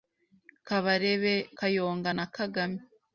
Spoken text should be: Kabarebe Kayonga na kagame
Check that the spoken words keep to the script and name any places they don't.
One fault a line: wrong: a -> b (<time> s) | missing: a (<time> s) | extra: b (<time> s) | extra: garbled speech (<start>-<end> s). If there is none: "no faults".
no faults